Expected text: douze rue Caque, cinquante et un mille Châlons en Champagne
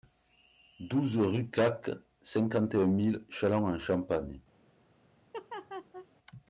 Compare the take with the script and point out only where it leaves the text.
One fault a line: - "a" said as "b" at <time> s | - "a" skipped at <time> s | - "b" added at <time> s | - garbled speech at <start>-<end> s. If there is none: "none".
none